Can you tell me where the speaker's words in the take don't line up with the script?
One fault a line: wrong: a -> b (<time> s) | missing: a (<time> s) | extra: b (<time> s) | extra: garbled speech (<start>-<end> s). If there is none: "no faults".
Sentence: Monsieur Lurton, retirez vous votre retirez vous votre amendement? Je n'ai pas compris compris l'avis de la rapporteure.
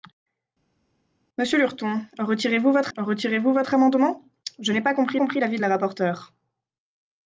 no faults